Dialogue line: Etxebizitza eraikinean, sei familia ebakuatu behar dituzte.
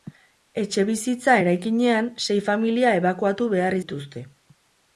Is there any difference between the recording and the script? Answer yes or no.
no